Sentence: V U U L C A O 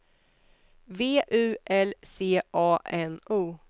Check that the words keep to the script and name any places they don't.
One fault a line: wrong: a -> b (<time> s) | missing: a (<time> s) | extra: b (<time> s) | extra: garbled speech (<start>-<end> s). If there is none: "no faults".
missing: U (1.6 s)
extra: N (2.8 s)